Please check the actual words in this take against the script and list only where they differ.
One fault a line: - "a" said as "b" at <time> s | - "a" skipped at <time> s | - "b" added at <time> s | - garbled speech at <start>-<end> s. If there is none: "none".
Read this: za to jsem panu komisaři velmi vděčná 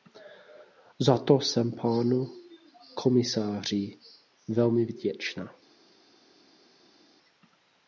none